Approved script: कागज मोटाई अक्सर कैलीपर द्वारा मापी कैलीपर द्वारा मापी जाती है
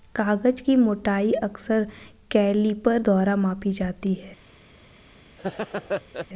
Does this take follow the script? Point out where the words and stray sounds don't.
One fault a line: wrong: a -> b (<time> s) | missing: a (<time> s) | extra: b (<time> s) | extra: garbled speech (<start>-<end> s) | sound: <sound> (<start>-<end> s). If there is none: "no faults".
extra: की (0.6 s)
missing: कैलीपर द्वारा मापी (3.7 s)
sound: laugh (5.4-6.3 s)